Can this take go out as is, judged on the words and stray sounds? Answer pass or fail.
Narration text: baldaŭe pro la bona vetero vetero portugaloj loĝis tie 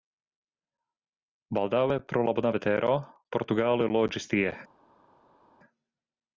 fail